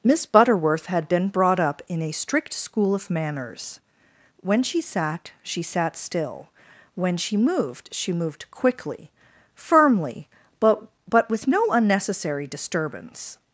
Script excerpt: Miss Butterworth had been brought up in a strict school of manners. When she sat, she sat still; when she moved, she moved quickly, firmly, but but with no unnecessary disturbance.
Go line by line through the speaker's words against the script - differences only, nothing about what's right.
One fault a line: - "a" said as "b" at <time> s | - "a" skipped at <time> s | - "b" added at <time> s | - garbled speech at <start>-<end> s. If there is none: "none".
none